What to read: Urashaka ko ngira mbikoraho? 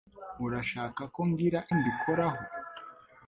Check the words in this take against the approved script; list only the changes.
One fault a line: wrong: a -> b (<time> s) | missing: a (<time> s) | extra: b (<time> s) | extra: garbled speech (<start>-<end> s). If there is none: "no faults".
no faults